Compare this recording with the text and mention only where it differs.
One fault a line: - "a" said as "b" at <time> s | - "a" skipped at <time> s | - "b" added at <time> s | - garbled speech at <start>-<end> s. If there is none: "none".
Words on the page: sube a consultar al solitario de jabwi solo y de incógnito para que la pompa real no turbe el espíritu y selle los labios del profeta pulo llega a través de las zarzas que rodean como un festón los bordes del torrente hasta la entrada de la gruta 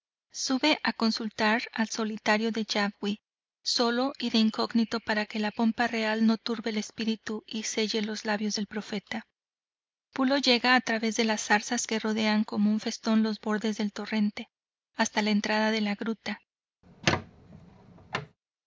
none